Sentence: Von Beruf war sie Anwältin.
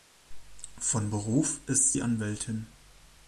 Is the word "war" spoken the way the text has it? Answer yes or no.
no